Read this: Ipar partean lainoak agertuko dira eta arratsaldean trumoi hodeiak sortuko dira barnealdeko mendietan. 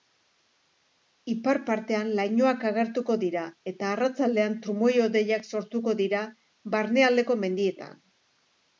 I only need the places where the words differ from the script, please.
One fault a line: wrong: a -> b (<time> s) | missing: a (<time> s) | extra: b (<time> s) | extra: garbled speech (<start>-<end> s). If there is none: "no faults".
no faults